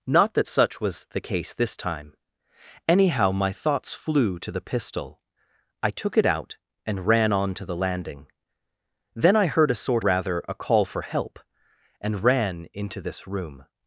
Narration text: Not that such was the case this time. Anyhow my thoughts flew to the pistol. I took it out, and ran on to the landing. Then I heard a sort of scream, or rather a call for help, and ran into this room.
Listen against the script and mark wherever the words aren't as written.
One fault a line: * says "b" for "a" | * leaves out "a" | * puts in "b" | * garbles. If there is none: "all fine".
* leaves out "of scream or"